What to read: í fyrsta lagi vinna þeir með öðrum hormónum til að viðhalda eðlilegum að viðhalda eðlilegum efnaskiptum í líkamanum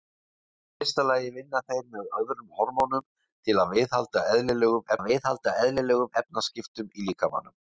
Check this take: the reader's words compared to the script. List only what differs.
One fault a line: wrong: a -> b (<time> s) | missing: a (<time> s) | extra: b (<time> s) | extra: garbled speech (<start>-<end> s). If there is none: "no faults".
no faults